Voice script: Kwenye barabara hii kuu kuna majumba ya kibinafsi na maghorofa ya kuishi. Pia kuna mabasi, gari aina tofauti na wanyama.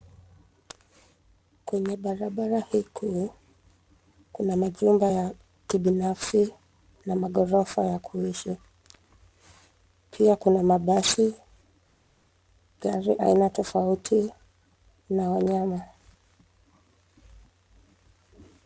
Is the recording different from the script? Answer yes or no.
no